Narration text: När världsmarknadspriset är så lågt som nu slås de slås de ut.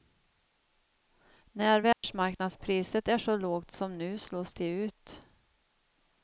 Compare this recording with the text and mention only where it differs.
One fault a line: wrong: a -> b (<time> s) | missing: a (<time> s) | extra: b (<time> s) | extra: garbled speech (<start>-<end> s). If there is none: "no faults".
missing: slås de (4.7 s)